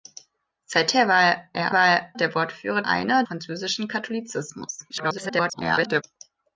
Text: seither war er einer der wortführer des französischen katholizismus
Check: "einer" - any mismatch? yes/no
yes